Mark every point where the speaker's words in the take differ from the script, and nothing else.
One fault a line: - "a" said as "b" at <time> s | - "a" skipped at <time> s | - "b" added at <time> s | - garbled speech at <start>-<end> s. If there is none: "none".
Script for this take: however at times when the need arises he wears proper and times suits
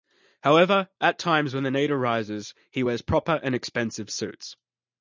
- "times" said as "expensive" at 3.5 s